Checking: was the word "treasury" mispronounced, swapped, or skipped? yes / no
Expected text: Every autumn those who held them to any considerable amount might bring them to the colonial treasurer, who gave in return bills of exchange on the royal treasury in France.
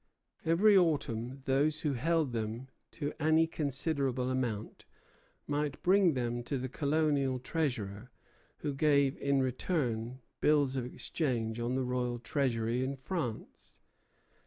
no